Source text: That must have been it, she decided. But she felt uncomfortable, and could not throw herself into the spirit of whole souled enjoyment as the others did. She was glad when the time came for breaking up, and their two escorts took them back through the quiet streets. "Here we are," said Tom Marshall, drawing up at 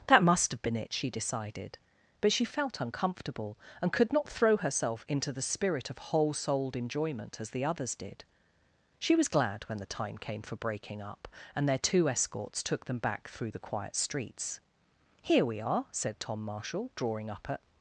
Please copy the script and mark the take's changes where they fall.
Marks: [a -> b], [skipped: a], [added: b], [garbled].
That must have been it, she decided. But she felt uncomfortable, and could not throw herself into the spirit of whole souled enjoyment as the others did. She was glad when the time came for breaking up, and their two escorts took them back through the quiet streets. "Here we are," said Tom Marshall, drawing up at